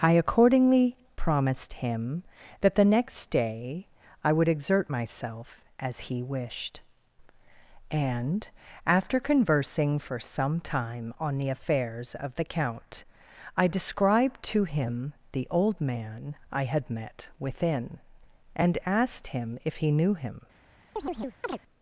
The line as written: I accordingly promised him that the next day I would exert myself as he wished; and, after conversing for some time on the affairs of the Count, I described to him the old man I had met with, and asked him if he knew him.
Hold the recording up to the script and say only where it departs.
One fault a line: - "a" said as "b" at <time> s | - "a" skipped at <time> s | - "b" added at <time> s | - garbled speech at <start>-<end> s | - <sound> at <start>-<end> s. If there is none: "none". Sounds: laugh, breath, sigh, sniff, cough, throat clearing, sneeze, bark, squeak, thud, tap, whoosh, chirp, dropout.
- "with" said as "within" at 17.4 s
- chirp at 21.0-21.6 s